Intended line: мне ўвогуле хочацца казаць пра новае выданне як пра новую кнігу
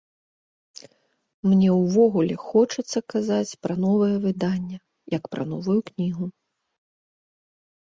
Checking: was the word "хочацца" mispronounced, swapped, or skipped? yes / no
no